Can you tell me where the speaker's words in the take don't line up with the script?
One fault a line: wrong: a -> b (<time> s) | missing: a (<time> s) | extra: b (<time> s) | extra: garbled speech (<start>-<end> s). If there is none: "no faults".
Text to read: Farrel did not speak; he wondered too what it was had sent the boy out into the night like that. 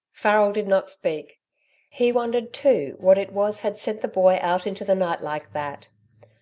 no faults